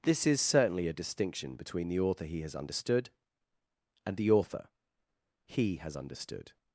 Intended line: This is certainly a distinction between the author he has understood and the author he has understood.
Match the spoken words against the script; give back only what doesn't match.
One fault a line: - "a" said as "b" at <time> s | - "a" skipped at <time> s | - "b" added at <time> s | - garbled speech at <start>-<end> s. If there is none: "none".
none